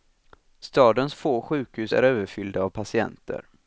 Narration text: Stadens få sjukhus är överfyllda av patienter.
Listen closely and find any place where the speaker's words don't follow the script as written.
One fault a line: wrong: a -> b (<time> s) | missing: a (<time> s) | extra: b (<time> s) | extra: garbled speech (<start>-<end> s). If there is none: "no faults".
no faults